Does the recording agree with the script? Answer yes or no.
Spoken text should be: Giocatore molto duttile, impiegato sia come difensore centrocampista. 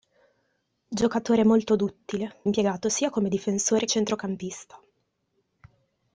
yes